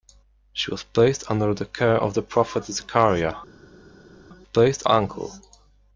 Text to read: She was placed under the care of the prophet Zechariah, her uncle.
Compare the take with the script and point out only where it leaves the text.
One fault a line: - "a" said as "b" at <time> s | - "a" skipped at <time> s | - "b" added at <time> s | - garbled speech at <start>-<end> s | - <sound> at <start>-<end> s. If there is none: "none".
- "her" said as "placed" at 4.4 s